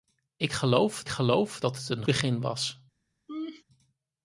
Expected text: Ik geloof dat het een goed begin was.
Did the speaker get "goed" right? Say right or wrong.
wrong